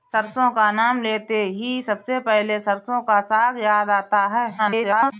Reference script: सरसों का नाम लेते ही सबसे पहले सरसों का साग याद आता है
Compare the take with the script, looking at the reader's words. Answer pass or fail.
fail